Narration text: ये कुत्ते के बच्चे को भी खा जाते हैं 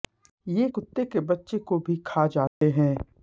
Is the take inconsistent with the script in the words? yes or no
no